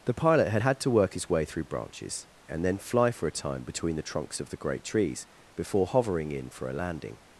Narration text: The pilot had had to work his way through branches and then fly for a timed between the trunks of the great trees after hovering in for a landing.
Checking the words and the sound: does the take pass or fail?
fail